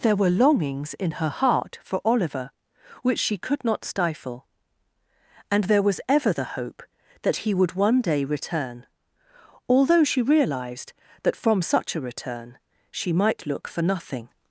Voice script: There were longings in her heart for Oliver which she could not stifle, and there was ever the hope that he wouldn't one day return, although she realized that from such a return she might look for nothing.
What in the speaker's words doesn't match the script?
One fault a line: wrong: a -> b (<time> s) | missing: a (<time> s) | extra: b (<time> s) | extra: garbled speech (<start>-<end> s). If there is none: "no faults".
wrong: wouldn't -> would (7.5 s)